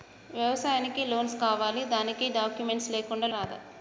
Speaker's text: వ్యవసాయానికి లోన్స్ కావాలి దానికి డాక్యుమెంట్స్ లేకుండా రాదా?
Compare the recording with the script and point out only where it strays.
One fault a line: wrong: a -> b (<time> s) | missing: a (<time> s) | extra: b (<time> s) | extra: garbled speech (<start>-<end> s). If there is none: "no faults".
no faults